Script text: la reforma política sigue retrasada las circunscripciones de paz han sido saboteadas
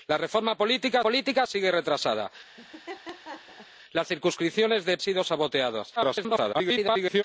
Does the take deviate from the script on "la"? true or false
false